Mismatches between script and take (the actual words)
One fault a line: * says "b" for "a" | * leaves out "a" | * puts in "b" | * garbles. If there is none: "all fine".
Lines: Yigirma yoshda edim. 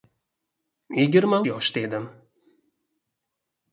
all fine